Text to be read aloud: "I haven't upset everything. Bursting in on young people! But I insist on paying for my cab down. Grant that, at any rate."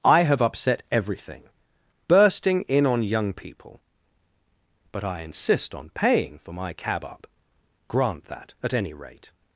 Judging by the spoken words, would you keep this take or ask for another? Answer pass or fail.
fail